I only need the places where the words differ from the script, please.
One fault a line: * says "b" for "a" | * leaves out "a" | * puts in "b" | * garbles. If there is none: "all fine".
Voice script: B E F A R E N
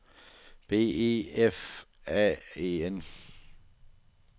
* leaves out "R"